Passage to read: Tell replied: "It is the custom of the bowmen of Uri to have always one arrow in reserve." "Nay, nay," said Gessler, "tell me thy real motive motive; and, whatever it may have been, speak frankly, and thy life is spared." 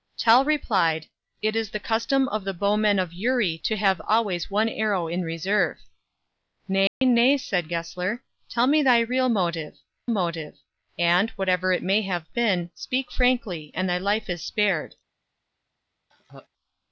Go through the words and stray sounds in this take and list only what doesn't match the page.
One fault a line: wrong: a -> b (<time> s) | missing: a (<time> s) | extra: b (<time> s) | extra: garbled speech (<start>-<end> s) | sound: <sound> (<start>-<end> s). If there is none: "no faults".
sound: dropout (6.9-7.0 s)
sound: laugh (16.1-16.5 s)